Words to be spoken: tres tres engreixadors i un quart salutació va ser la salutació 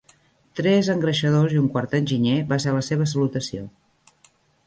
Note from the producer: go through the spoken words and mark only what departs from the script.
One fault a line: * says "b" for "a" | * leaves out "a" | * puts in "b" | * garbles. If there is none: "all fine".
* leaves out "tres"
* says "enginyer" for "salutació"
* puts in "seva"